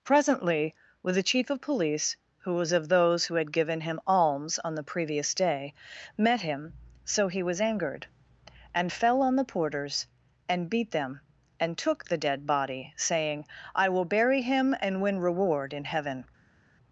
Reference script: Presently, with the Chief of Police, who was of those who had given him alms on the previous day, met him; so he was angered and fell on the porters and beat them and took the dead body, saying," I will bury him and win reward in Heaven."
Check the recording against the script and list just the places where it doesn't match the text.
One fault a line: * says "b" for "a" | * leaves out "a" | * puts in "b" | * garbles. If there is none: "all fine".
all fine